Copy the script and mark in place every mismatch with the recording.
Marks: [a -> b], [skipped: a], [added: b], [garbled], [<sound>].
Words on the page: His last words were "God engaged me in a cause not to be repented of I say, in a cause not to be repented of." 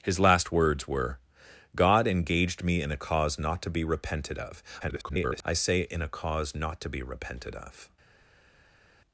His last words were "God engaged me in a cause not to be repented of [garbled] I say, in a cause not to be repented of."